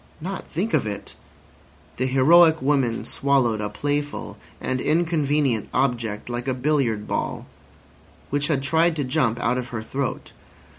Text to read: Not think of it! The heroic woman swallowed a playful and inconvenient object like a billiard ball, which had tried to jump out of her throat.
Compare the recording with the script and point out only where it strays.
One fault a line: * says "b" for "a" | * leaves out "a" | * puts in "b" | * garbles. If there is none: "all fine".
all fine